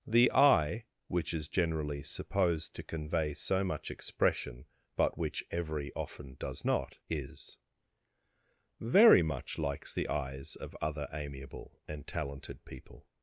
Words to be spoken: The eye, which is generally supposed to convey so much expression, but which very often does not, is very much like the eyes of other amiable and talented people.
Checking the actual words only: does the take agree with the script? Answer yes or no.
no